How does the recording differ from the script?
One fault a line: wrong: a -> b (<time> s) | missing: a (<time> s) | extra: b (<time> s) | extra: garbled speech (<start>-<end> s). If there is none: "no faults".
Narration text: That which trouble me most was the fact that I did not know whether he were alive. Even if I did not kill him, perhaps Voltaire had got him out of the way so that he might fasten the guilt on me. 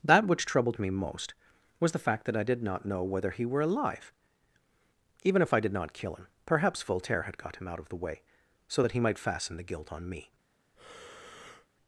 wrong: trouble -> troubled (0.5 s)